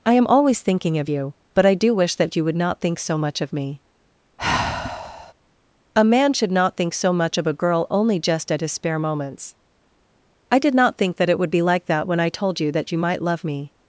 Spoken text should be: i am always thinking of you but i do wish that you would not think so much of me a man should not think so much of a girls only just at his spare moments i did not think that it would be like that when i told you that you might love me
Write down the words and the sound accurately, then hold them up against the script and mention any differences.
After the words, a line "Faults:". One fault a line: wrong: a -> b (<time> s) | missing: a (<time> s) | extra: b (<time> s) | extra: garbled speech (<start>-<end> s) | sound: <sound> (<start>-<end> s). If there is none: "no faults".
i am always thinking of you but i do wish that you would not think so much of me a man should not think so much of a girl only just at his spare moments i did not think that it would be like that when i told you that you might love me
Faults:
sound: sigh (4.4-5.3 s)
wrong: girls -> girl (7.5 s)